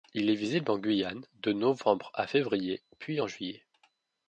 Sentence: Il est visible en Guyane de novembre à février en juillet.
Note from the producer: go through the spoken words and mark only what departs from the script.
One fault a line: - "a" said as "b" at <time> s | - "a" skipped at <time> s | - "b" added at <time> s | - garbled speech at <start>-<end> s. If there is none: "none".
- "puis" added at 3.0 s